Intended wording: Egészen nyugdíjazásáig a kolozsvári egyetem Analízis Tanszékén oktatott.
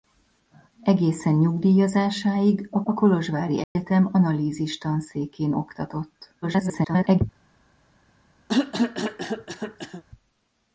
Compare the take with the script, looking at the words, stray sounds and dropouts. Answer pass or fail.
fail